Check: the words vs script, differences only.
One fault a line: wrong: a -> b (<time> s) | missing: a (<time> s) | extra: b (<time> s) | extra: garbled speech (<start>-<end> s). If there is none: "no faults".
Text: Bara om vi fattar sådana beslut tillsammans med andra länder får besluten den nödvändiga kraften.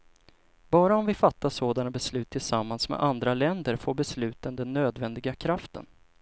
no faults